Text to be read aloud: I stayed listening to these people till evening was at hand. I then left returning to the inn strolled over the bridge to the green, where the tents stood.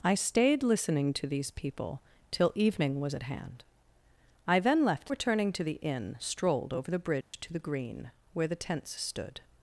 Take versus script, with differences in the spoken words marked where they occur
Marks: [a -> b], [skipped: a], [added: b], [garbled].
I stayed listening to these people till evening was at hand. I then left returning to the inn strolled over the bridge to the green, where the tents stood.